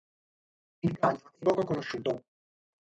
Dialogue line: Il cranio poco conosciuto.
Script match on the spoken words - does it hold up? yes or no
no